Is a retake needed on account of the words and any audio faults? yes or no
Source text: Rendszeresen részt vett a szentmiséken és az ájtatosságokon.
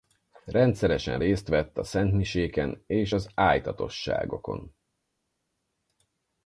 no